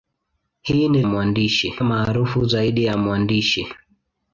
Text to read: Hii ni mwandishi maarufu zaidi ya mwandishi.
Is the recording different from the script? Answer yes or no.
no